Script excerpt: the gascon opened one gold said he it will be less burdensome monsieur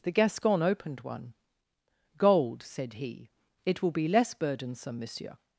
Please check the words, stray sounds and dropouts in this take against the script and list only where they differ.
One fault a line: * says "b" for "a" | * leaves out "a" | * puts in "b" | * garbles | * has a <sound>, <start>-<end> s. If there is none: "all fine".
all fine